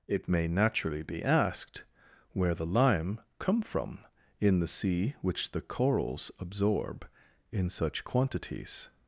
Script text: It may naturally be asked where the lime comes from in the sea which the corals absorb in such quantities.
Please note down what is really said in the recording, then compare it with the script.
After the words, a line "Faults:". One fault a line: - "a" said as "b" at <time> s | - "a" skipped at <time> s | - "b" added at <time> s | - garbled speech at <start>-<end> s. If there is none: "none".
It may naturally be asked where the lime come from in the sea which the corals absorb in such quantities.
Faults:
- "comes" said as "come" at 3.4 s